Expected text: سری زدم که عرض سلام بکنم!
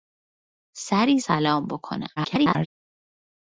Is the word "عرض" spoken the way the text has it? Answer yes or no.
no